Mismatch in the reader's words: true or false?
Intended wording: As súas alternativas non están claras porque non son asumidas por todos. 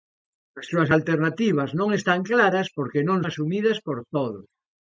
true